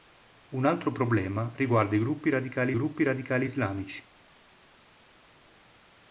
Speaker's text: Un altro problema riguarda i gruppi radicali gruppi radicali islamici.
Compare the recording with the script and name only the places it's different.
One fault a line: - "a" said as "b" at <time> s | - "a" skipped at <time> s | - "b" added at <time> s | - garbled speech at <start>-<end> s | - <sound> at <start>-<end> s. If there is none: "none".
none